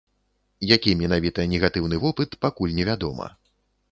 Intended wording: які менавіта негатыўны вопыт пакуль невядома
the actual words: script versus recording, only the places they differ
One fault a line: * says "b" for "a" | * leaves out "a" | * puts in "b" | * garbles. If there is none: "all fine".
all fine